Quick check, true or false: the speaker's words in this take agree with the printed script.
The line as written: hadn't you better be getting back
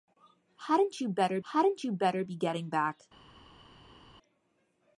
false